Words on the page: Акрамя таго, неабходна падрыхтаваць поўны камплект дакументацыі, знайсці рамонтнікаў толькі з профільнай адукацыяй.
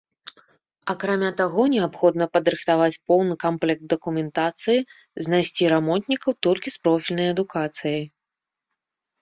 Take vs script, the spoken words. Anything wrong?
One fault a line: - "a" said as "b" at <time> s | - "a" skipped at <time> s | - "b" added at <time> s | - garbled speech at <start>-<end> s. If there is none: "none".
none